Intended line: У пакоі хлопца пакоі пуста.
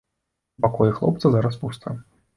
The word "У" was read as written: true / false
true